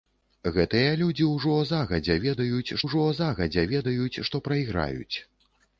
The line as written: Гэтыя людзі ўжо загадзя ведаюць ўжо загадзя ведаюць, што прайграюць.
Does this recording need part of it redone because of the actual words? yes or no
no